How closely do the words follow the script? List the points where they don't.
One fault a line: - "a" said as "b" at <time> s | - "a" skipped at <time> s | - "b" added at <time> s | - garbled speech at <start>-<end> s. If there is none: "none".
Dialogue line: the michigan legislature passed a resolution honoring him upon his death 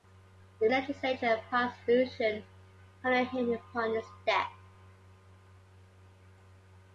- "michigan" skipped at 0.7 s